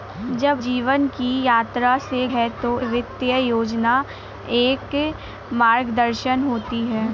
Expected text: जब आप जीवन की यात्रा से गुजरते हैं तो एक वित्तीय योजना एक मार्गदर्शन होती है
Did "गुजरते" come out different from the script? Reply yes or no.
yes